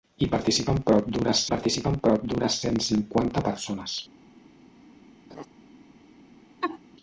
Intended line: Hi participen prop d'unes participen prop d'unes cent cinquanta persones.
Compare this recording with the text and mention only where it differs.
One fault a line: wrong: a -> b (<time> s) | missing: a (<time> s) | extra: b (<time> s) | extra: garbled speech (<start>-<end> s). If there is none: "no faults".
no faults